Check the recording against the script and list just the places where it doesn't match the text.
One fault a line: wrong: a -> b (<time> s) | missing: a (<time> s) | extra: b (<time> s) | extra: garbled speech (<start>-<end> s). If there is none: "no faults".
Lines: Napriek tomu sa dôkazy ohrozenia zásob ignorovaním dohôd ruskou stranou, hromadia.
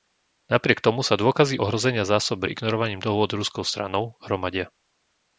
no faults